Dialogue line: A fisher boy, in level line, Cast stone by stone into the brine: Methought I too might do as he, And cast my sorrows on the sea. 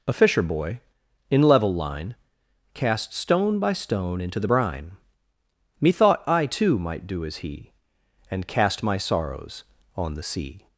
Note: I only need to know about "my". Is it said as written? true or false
true